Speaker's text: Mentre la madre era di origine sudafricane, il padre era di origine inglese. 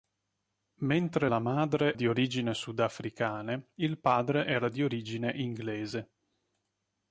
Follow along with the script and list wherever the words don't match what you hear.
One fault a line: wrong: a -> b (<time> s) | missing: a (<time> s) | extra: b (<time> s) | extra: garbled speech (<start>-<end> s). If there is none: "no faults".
missing: era (2.0 s)